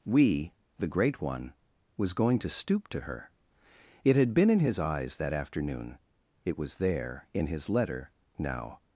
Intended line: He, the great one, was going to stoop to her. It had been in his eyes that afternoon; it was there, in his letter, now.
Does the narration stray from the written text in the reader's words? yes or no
yes